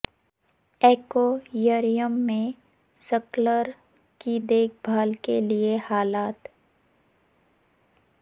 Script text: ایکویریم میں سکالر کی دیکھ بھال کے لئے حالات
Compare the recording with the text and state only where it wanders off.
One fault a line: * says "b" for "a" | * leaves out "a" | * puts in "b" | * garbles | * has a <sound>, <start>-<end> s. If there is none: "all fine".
all fine